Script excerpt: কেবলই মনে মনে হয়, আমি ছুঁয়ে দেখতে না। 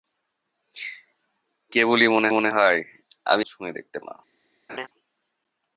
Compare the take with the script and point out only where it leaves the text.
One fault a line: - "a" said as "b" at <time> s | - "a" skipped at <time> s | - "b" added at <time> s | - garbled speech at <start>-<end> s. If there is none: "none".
none